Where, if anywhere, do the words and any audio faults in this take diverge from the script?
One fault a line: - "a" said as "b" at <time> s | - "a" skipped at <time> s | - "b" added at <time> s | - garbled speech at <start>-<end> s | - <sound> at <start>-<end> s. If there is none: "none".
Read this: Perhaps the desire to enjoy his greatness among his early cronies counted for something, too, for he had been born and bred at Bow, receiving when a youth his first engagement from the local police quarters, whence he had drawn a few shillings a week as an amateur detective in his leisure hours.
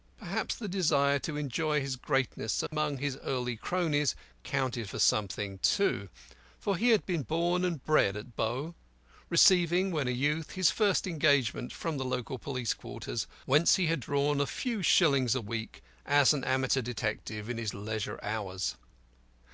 - dropout at 2.7-2.7 s